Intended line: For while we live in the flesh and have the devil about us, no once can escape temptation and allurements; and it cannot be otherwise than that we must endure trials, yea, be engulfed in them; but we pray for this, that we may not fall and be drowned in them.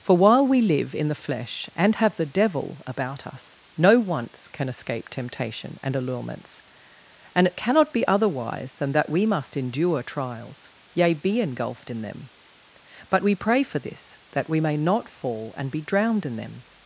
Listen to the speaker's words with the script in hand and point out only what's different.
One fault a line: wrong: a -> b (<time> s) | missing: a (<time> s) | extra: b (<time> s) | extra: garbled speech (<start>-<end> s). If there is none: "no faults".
no faults